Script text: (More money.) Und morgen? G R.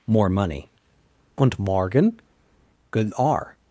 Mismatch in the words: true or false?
true